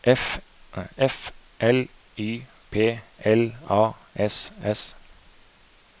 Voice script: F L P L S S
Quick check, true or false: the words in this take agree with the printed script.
false